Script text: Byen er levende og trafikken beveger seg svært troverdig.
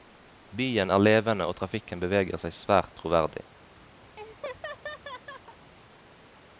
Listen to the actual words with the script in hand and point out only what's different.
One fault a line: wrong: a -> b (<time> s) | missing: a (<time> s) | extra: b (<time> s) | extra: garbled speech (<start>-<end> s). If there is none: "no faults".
no faults